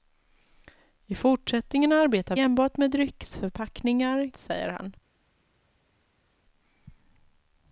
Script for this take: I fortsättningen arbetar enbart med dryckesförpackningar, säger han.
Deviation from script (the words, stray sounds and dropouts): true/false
false